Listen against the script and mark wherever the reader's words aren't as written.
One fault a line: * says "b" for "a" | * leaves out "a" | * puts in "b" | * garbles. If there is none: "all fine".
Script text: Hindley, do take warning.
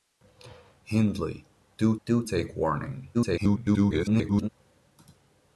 * puts in "do"
* garbles